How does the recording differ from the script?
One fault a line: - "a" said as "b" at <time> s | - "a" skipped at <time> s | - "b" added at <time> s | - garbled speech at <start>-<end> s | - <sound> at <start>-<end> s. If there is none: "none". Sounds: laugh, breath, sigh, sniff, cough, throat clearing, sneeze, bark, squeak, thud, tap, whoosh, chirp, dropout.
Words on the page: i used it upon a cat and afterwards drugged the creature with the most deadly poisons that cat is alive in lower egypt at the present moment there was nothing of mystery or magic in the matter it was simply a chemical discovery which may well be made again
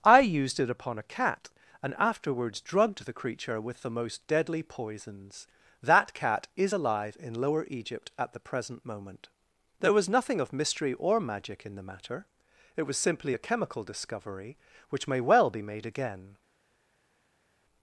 none